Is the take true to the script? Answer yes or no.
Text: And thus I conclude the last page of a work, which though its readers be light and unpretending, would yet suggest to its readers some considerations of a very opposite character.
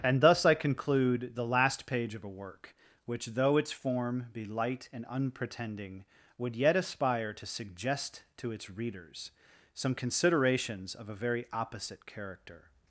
no